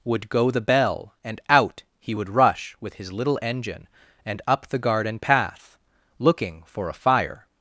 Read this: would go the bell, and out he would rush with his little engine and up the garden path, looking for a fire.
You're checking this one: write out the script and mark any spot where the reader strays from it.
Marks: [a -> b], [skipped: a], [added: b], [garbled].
would go the bell, and out he would rush with his little engine and up the garden path, looking for a fire.